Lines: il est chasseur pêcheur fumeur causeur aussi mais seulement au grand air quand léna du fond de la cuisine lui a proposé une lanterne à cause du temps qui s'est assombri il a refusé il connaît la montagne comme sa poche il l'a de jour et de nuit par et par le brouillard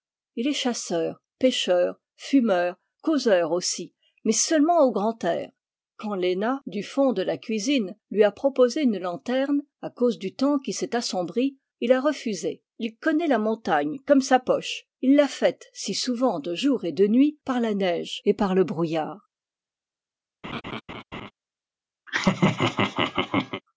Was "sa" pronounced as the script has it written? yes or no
yes